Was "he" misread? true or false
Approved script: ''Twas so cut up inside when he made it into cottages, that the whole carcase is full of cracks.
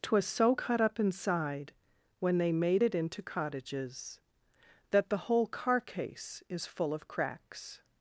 true